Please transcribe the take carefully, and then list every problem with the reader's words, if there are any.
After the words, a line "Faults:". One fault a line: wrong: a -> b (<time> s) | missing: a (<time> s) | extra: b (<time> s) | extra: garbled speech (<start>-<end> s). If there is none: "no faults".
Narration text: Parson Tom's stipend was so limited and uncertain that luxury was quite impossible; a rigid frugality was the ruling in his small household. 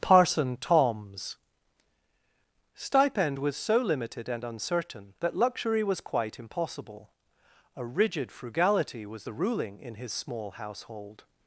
Parson Tom's stipend was so limited and uncertain that luxury was quite impossible; a rigid frugality was the ruling in his small household.
Faults:
no faults